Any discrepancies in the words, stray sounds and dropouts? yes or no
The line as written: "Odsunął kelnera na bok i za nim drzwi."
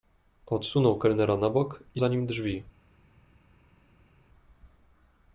no